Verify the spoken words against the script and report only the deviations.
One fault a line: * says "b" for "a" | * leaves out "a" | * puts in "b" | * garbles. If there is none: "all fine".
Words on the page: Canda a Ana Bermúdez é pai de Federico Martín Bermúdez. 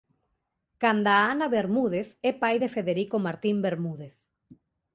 all fine